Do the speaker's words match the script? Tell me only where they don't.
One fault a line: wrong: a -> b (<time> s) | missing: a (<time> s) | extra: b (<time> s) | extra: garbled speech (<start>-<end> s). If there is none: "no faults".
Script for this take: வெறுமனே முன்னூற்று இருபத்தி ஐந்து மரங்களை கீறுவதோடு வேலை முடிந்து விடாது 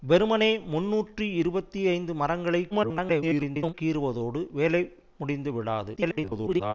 extra: garbled speech (2.7-3.7 s)
extra: garbled speech (6.0-6.7 s)